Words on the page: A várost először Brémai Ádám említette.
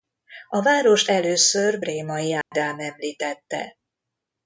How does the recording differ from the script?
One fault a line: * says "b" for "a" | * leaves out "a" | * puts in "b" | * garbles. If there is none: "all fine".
all fine